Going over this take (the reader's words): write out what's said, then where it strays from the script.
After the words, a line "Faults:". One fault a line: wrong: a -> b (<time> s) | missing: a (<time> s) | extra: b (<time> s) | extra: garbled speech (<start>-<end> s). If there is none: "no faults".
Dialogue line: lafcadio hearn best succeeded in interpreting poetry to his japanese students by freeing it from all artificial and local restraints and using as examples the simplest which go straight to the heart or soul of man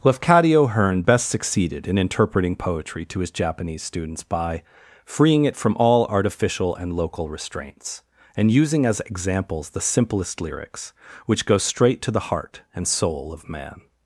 lafcadio hearn best succeeded in interpreting poetry to his japanese students by freeing it from all artificial and local restraints and using as examples the simplest lyrics which go straight to the heart and soul of man
Faults:
extra: lyrics (10.4 s)
wrong: or -> and (12.7 s)